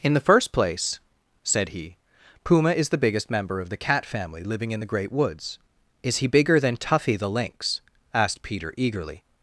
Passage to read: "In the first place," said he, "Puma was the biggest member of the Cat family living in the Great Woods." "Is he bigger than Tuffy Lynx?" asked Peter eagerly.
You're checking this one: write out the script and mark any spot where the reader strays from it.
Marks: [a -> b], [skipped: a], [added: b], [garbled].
"In the first place," said he, "Puma [was -> is] the biggest member of the Cat family living in the Great Woods." "Is he bigger than Tuffy [added: the] Lynx?" asked Peter eagerly.